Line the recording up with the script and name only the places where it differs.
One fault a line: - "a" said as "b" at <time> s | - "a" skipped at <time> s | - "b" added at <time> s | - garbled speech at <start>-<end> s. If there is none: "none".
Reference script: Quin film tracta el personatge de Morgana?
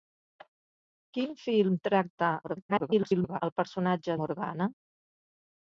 - garbled speech at 2.4-3.4 s
- "de" skipped at 4.2 s